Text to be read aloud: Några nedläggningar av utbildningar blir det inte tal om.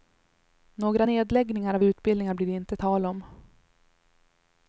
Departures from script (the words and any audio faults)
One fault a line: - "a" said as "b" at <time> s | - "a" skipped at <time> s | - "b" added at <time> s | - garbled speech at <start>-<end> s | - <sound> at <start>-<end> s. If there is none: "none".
none